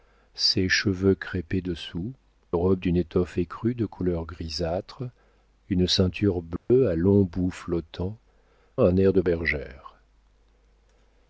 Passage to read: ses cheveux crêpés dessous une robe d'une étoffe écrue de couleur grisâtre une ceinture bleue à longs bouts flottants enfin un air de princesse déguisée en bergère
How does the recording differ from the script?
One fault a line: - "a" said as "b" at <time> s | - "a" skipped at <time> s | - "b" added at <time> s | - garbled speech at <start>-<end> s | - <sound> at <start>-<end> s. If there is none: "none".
- "une" skipped at 2.1 s
- dropout at 6.6-6.7 s
- "enfin" skipped at 8.2 s
- "princesse déguisée en" skipped at 9.2 s